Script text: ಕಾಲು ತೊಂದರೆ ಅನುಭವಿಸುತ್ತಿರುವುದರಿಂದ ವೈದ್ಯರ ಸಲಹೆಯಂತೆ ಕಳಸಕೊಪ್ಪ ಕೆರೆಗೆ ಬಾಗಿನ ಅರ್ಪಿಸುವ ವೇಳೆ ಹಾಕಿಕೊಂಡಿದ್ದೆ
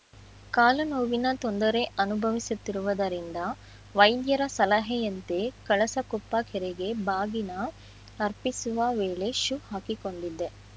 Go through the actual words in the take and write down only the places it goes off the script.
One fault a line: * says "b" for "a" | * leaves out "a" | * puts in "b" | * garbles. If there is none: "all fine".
* puts in "ನೋವಿನ"
* puts in "ಶೂ"